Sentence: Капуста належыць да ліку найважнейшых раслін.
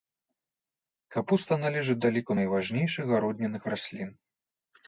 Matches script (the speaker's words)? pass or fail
fail